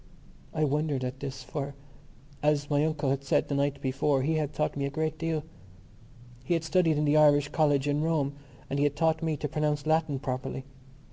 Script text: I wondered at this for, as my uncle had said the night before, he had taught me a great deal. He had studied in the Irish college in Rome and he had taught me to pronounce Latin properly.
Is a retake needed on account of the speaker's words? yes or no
no